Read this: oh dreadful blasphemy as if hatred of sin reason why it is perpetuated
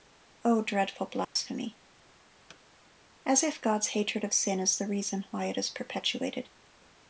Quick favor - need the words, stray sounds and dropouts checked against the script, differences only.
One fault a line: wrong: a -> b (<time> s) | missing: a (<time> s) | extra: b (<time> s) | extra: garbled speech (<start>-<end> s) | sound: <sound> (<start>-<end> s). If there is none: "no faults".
sound: dropout (1.2-1.4 s)
sound: thud (2.5-2.6 s)
extra: god's (3.6 s)
extra: is the (4.6 s)